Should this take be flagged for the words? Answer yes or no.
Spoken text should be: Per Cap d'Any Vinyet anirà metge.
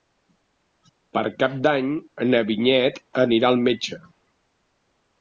yes